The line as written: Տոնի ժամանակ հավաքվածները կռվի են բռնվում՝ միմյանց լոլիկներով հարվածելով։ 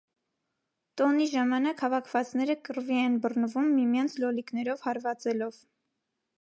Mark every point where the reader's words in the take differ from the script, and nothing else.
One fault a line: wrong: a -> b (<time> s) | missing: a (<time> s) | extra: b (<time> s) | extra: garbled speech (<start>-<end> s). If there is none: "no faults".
no faults